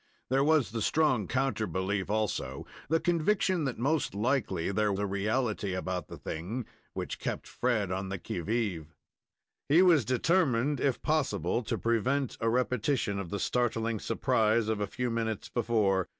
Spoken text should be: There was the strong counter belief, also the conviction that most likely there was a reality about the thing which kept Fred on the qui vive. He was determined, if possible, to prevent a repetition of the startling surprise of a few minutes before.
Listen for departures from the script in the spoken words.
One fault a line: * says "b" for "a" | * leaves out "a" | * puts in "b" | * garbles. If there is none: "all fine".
* leaves out "was"